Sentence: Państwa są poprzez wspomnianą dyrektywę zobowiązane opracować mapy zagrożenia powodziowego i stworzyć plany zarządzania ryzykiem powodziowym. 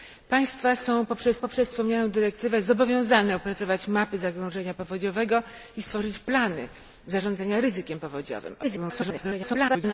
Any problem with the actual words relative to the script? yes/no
yes